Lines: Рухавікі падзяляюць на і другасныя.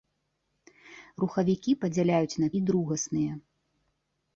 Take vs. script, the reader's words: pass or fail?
pass